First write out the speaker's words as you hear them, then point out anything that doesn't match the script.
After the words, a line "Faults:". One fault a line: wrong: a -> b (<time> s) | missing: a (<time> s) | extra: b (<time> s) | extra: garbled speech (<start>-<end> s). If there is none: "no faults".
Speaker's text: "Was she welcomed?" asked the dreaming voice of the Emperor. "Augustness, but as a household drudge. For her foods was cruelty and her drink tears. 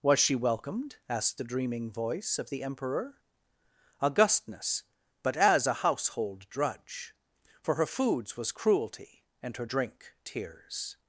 "Was she welcomed?" asked the dreaming voice of the Emperor. "Augustness, but as a household drudge. For her foods was cruelty and her drink tears.
Faults:
no faults